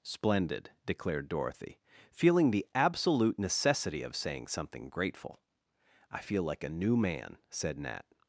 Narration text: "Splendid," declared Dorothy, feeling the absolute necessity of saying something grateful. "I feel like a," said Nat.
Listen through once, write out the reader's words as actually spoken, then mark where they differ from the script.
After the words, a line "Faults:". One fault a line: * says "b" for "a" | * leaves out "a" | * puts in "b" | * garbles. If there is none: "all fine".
"Splendid," declared Dorothy, feeling the absolute necessity of saying something grateful. "I feel like a new man," said Nat.
Faults:
* puts in "new man"